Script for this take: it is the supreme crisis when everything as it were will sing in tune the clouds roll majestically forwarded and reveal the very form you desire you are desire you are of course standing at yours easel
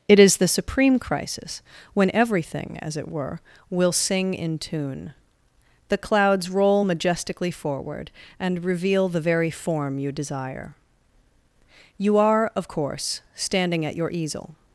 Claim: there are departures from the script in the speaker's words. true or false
true